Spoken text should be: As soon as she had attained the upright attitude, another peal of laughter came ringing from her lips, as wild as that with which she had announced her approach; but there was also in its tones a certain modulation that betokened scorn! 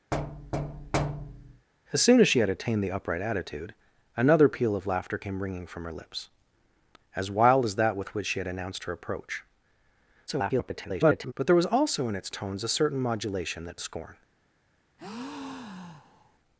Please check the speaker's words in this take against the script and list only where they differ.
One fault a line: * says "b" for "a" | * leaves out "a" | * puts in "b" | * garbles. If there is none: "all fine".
* garbles
* leaves out "betokened"